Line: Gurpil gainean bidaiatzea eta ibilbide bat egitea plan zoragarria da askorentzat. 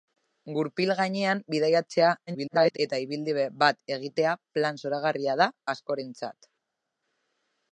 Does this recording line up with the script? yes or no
no